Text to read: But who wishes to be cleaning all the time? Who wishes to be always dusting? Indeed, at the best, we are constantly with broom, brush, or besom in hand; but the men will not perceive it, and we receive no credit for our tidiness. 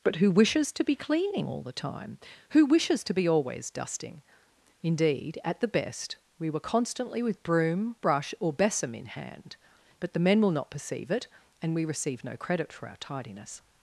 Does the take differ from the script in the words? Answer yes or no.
yes